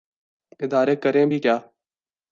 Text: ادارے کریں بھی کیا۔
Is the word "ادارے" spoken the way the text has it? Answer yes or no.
yes